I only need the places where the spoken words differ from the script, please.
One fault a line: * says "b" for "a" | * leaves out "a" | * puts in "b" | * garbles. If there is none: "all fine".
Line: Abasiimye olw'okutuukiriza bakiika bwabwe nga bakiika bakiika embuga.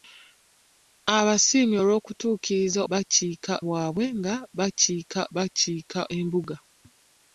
all fine